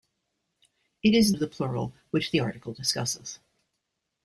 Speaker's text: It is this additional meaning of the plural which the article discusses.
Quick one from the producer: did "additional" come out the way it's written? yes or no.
no